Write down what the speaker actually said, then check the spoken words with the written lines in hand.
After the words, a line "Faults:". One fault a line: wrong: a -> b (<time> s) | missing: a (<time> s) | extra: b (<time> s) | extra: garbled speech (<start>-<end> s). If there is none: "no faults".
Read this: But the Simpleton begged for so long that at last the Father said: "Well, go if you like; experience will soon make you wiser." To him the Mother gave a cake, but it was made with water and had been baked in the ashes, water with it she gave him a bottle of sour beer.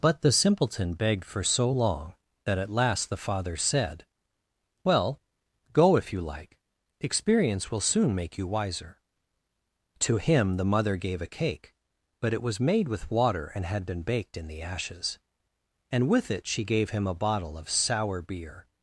But the Simpleton begged for so long that at last the Father said: "Well, go if you like; experience will soon make you wiser." To him the Mother gave a cake, but it was made with water and had been baked in the ashes, and with it she gave him a bottle of sour beer.
Faults:
wrong: water -> and (15.9 s)